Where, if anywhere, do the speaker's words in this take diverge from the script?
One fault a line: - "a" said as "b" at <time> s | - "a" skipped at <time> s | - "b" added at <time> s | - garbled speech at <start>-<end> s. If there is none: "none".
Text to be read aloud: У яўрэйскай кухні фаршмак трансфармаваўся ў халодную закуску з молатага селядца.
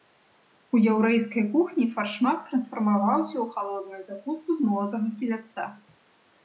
none